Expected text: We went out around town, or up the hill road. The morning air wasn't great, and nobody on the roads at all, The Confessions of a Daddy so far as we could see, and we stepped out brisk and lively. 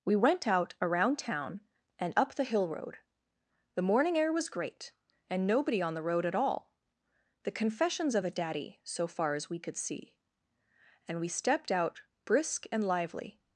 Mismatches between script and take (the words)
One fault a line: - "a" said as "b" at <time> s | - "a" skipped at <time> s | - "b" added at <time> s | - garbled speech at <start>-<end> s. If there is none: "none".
- "or" said as "and" at 2.0 s
- "wasn't" said as "was" at 4.3 s
- "roads" said as "road" at 6.0 s